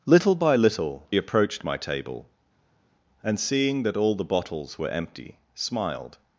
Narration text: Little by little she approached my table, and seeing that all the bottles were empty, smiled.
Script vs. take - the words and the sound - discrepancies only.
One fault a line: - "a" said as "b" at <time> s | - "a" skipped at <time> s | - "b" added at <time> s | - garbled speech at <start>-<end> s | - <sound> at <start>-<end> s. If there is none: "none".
- "she" skipped at 1.1 s